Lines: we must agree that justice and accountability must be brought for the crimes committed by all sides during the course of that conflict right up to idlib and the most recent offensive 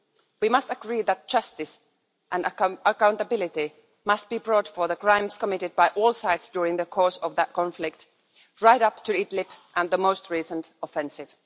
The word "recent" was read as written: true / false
true